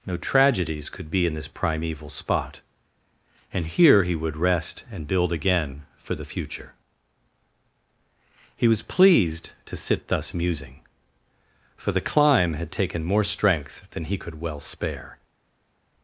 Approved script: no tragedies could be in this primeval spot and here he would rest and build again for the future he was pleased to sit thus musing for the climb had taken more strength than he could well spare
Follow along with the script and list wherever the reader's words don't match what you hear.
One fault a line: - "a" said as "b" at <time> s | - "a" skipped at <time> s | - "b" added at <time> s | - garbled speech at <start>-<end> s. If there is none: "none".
none